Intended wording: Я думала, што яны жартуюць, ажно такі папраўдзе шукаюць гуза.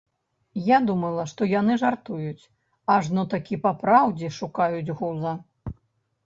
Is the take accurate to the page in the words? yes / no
yes